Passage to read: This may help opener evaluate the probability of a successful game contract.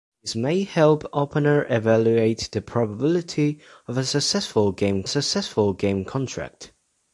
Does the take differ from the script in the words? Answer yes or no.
yes